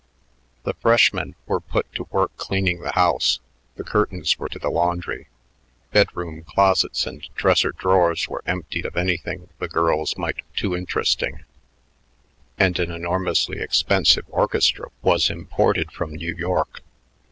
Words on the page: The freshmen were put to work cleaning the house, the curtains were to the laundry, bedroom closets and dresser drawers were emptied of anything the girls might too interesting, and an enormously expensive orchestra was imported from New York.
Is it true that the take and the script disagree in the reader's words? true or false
false